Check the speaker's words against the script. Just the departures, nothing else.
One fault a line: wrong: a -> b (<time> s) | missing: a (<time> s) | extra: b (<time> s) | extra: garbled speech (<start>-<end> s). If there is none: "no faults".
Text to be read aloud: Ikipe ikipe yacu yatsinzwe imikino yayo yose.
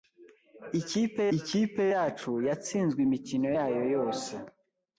no faults